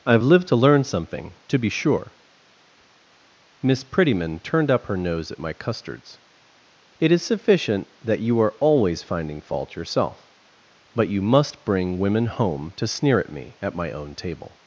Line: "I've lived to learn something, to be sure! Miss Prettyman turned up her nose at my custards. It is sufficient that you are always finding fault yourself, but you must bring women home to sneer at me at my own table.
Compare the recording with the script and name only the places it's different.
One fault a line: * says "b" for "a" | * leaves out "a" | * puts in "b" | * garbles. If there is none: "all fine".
all fine